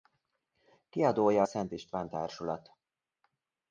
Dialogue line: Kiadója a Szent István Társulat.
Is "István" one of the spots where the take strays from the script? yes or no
no